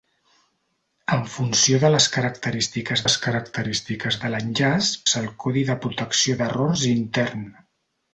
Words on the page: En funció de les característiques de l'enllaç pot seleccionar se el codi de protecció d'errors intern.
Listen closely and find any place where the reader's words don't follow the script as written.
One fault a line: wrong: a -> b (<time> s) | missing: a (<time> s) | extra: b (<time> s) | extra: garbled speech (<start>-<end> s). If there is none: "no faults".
extra: les característiques (3.0 s)
missing: pot seleccionar (4.9 s)